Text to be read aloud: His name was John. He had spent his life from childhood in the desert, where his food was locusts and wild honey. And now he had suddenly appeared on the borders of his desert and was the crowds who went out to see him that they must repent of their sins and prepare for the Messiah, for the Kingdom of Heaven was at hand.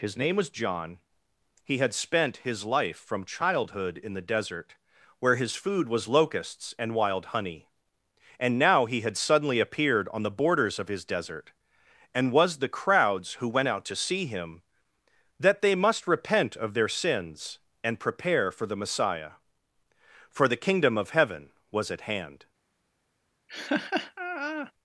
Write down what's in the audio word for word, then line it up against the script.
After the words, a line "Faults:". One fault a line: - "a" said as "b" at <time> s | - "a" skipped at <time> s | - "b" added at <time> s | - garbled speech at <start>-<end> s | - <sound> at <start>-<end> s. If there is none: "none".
His name was John. He had spent his life from childhood in the desert, where his food was locusts and wild honey. And now he had suddenly appeared on the borders of his desert and was the crowds who went out to see him that they must repent of their sins and prepare for the Messiah, for the Kingdom of Heaven was at hand.
Faults:
- laugh at 23.5-24.7 s